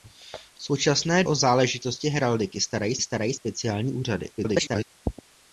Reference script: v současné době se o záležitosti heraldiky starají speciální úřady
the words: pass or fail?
fail